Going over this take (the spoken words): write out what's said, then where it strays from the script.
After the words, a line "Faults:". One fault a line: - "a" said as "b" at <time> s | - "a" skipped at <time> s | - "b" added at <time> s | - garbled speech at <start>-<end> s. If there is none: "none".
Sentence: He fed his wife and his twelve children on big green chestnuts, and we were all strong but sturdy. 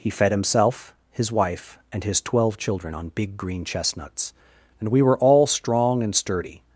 He fed himself, his wife and his twelve children on big green chestnuts, and we were all strong and sturdy.
Faults:
- "himself" added at 0.3 s
- "but" said as "and" at 6.0 s